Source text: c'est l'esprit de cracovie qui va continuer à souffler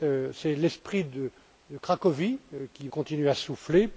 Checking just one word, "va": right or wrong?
wrong